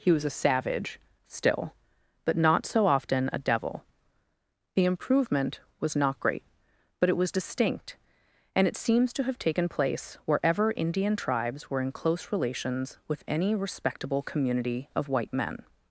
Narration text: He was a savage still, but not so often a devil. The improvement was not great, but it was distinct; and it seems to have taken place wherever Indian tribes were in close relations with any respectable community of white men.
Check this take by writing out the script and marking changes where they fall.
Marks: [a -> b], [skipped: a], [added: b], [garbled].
He was a savage still, but not so often a devil. The improvement was not great, but it was distinct; and it seems to have taken place wherever Indian tribes were in close relations with any respectable community of white men.